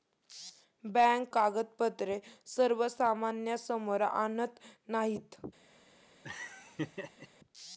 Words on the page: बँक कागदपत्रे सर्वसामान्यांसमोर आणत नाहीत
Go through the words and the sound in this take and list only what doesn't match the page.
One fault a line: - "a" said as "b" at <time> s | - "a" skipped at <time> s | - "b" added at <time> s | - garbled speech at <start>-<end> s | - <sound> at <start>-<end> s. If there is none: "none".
- laugh at 6.2-7.3 s